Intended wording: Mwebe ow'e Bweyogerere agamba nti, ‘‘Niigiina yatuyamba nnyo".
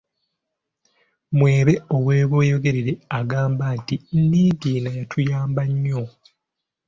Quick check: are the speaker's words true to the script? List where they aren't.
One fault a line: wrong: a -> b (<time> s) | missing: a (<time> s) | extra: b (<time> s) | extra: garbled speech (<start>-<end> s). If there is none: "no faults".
no faults